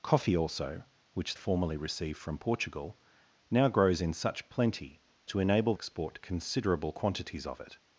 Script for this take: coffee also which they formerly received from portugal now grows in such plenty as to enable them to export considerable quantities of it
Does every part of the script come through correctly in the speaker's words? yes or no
no